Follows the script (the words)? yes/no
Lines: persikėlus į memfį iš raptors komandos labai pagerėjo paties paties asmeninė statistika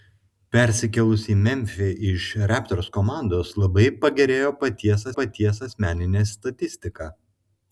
yes